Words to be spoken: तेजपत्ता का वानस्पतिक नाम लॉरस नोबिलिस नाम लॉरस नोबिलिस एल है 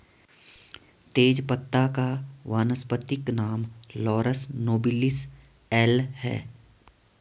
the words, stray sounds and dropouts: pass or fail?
fail